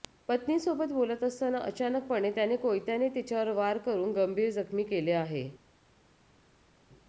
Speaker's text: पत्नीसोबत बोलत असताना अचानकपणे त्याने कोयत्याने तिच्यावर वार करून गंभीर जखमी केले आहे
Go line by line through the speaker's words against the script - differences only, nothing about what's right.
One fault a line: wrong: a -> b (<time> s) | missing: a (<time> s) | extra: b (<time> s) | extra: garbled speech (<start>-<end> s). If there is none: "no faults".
no faults